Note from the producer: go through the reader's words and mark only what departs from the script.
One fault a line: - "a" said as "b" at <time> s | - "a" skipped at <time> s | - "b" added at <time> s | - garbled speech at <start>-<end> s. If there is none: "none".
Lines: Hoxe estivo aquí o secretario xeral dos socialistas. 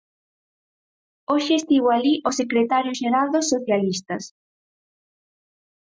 - "aquí" said as "alí" at 2.0 s